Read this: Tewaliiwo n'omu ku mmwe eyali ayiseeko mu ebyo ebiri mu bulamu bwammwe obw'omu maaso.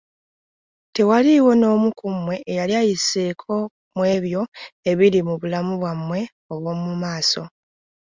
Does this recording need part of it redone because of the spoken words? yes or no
no